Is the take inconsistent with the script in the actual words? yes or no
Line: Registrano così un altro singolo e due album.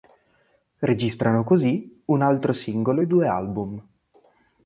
no